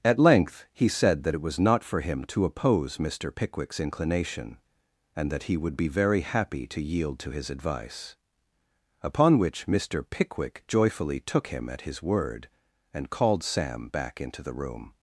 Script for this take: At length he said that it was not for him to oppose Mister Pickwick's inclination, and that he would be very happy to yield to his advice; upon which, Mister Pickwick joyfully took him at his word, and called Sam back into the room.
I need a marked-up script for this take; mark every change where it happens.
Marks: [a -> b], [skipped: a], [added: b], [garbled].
At length he said that it was not for him to oppose Mister Pickwick's inclination, and that he would be very happy to yield to his advice; upon which, Mister Pickwick joyfully took him at his word, and called Sam back into the room.